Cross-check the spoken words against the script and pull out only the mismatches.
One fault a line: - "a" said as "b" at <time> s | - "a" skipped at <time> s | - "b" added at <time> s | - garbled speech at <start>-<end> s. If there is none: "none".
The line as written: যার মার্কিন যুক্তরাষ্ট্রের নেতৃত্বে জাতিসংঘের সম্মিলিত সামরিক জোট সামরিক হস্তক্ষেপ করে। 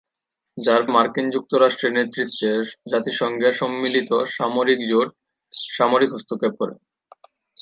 none